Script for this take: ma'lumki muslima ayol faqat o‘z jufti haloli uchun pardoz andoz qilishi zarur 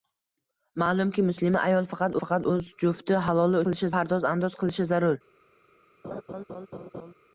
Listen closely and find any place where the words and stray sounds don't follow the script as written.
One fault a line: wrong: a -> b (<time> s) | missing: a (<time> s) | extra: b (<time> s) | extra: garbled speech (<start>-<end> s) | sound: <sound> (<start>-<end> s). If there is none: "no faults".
extra: faqat (2.2 s)
wrong: uchun -> qilishi (3.7 s)
sound: laugh (6.0-7.1 s)